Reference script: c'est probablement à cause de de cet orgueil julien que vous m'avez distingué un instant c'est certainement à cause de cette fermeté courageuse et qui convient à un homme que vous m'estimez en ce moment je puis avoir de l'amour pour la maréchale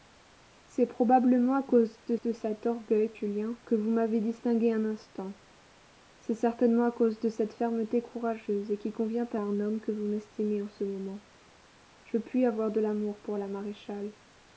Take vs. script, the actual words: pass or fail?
pass